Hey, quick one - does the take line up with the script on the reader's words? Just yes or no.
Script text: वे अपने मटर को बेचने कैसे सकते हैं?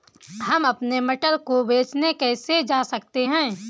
no